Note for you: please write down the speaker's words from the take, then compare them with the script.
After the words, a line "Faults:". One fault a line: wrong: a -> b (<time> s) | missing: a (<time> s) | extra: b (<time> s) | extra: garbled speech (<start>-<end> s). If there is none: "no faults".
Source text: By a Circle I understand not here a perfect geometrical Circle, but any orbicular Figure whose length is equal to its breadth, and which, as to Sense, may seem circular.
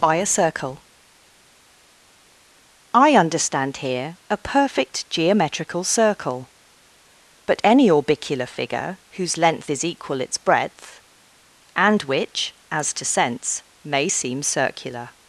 By a Circle I understand here a perfect geometrical Circle, but any orbicular Figure whose length is equal its breadth, and which, as to Sense, may seem circular.
Faults:
missing: not (3.8 s)
missing: to (10.2 s)